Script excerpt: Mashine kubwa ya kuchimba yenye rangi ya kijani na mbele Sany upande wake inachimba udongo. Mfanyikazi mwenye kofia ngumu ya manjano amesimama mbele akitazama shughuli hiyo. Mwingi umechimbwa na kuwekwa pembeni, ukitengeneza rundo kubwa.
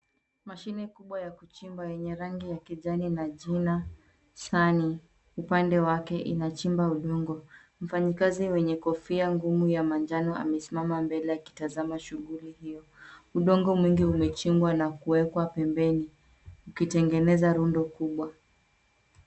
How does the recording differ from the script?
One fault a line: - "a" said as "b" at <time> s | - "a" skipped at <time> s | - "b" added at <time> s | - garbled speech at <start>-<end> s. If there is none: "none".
- "mbele" said as "jina" at 3.3 s
- "Udongo" added at 13.3 s